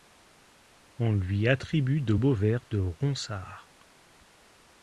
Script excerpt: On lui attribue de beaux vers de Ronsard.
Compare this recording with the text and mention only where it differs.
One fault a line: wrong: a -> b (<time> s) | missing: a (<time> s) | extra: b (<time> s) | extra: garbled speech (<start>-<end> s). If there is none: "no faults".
no faults